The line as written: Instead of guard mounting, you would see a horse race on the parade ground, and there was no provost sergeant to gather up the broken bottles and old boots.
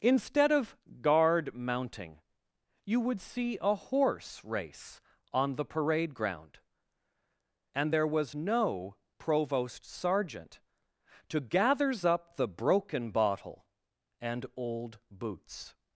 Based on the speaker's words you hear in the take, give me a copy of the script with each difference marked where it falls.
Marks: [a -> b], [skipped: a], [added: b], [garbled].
Instead of guard mounting, you would see a horse race on the parade ground, and there was no provost sergeant to [gather -> gathers] up the broken [bottles -> bottle] and old boots.